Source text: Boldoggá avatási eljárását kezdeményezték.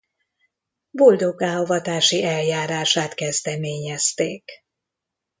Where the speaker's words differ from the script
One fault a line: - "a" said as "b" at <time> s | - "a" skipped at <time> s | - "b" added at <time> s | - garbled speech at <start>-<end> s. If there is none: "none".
none